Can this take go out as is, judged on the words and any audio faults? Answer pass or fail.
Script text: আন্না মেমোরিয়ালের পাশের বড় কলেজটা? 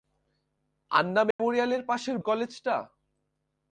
fail